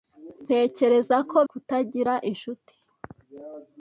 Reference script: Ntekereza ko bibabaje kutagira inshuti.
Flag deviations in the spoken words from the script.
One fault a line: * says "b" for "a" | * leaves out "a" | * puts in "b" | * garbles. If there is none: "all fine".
* leaves out "bibabaje"